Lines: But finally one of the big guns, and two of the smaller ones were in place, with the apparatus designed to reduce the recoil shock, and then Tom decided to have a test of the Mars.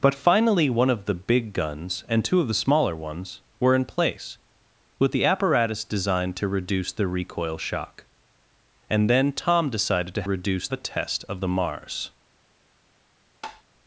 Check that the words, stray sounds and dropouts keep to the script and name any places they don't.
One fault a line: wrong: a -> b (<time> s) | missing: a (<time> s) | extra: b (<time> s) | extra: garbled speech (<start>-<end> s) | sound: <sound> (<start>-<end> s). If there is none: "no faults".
wrong: have -> reduce (10.2 s)
sound: tap (13.4-13.6 s)